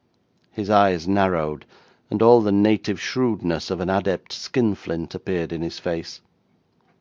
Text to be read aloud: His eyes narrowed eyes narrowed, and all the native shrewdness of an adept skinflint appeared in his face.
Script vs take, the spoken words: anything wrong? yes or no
yes